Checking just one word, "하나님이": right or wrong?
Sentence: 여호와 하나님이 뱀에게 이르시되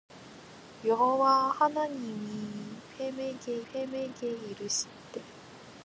right